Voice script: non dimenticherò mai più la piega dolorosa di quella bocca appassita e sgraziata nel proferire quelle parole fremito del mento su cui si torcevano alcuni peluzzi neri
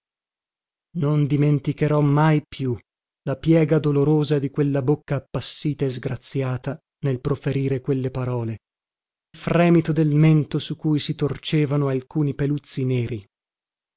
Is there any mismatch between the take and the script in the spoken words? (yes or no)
no